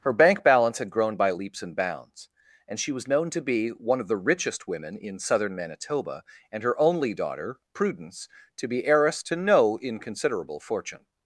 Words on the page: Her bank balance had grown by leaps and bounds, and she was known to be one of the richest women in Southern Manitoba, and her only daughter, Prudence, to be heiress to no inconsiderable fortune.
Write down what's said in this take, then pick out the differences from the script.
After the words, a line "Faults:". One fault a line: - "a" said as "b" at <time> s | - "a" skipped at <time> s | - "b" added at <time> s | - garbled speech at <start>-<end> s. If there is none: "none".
Her bank balance had grown by leaps and bounds, and she was known to be one of the richest women in Southern Manitoba, and her only daughter, Prudence, to be heiress to no inconsiderable fortune.
Faults:
none